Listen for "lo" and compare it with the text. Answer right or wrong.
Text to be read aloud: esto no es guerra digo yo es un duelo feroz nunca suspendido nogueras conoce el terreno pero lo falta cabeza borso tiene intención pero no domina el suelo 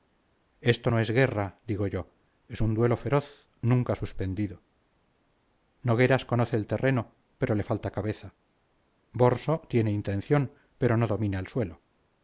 wrong